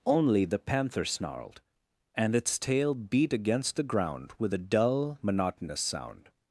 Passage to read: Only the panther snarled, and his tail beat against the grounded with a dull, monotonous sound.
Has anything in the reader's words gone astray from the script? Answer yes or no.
yes